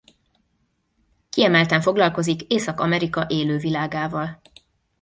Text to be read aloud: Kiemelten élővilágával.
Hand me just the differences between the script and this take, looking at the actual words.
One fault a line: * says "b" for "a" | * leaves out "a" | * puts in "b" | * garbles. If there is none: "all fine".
* puts in "foglalkozik Észak Amerika"